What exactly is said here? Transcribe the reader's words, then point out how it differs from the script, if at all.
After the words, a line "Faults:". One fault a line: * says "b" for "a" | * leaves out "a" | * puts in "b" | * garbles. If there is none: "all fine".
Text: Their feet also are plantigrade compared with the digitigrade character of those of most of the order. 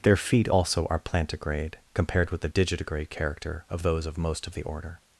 Their feet also are plantigrade compared with the digitigrade character of those of most of the order.
Faults:
all fine